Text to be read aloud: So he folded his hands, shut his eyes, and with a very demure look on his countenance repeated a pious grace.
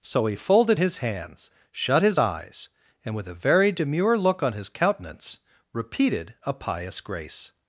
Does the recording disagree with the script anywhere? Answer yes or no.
no